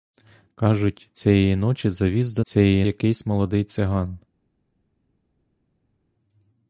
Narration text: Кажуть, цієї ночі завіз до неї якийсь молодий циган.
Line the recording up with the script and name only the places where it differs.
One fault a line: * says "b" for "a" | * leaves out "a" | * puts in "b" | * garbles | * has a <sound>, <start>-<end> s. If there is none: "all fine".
* says "цієї" for "неї"